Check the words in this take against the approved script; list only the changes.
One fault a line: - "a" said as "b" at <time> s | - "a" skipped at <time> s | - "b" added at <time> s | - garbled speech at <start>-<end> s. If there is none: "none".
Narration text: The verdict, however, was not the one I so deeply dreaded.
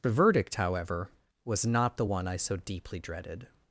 none